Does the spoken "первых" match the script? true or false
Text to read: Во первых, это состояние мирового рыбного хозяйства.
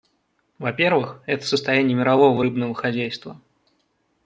true